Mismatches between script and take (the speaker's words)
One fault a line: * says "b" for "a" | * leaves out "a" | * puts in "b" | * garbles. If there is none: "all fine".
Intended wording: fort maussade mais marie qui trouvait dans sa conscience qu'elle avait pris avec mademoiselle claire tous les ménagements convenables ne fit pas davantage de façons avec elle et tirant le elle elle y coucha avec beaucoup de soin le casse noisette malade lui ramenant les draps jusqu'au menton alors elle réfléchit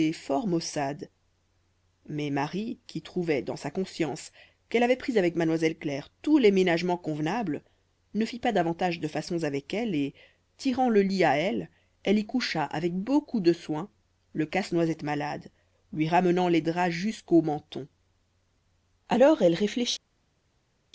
* puts in "lit à"